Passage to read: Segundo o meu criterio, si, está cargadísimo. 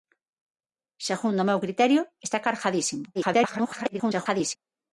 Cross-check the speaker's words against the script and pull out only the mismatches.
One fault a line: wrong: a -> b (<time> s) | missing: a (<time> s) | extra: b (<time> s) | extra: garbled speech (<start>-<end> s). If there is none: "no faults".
missing: si (2.0 s)
extra: garbled speech (3.1-4.6 s)